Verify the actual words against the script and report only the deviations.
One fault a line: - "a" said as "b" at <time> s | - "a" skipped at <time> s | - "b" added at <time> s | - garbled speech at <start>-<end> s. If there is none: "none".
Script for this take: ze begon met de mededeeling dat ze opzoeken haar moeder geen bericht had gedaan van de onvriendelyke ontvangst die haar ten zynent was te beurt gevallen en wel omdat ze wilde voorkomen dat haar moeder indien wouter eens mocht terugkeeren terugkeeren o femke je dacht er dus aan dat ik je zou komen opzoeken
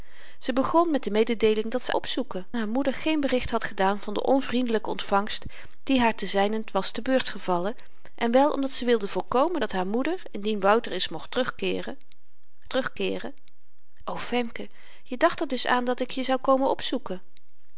none